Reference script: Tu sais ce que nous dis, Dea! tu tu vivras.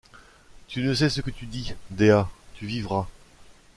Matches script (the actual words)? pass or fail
fail